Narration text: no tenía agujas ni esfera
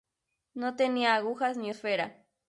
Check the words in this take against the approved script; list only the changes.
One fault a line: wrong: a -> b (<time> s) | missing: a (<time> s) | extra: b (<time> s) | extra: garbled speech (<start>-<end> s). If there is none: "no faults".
no faults